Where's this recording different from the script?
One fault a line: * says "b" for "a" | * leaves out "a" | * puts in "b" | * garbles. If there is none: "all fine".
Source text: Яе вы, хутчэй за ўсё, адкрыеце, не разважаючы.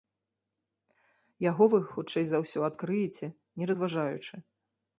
* says "Яго" for "Яе"